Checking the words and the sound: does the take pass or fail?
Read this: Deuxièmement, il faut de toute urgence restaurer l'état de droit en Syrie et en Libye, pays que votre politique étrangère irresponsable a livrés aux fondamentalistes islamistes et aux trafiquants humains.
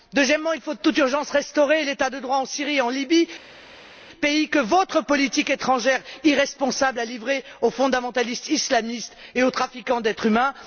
fail